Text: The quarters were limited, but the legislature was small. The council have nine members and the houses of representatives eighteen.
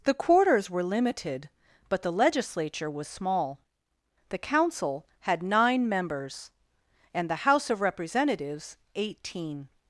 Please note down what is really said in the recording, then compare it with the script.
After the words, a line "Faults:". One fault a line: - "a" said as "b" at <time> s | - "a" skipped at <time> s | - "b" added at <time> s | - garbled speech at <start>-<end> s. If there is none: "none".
The quarters were limited, but the legislature was small. The council had nine members and the house of representatives eighteen.
Faults:
- "have" said as "had" at 5.2 s
- "houses" said as "house" at 7.5 s